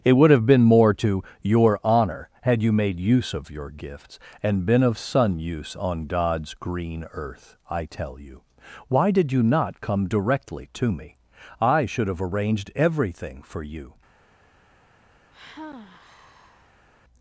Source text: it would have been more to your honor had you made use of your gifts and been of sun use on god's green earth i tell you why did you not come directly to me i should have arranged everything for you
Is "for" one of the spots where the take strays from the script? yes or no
no